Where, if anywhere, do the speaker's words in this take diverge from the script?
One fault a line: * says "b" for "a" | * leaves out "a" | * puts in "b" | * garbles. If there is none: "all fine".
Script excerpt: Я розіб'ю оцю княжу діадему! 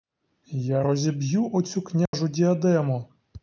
all fine